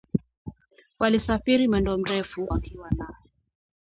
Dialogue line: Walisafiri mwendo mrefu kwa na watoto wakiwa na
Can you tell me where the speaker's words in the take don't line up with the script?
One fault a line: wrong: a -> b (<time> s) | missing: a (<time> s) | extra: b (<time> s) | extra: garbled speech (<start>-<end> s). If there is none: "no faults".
missing: kwa na watoto (2.5 s)